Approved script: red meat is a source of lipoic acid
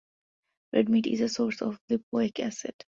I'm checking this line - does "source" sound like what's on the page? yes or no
yes